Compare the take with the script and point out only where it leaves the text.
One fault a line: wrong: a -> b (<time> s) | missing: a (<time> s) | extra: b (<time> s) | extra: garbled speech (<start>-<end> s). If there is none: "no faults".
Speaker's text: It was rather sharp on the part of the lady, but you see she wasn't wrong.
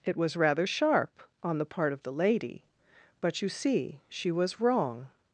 wrong: wasn't -> was (4.3 s)